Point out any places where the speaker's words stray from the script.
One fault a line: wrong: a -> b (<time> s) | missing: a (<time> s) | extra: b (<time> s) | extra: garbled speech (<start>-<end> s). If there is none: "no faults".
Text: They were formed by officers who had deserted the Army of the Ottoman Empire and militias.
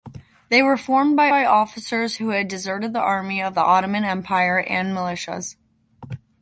extra: by (1.3 s)